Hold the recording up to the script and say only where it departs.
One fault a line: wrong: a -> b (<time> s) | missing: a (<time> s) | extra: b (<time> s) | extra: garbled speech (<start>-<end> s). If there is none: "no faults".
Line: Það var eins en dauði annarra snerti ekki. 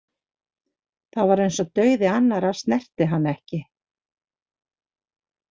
wrong: en -> og (1.6 s)
extra: hann (3.2 s)